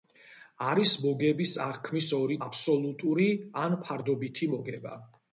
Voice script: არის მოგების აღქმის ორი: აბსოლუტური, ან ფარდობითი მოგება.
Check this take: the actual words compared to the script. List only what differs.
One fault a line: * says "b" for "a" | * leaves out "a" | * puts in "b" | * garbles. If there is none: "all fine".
all fine